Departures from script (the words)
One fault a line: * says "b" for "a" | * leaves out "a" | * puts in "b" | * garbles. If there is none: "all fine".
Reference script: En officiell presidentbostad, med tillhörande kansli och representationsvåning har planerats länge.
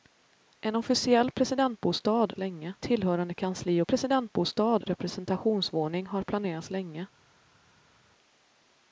* says "länge" for "med"
* says "presidentbostad" for "och"